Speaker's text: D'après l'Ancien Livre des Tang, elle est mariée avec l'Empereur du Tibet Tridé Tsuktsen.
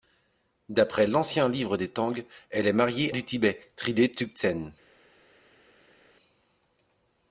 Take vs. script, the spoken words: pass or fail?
fail